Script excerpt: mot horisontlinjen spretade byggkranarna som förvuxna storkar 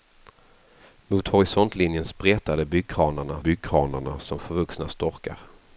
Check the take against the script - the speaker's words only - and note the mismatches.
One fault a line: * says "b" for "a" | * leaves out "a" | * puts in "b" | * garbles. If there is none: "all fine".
* puts in "byggkranarna"